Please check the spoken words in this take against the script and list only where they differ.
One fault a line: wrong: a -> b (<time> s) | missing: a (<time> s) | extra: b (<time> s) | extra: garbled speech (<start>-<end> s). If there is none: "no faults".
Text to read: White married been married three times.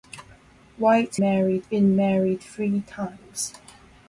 no faults